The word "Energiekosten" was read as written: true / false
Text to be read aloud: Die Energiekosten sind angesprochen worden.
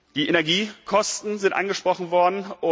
true